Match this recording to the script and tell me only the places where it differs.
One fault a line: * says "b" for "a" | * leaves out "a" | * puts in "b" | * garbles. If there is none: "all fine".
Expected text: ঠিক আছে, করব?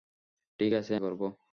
all fine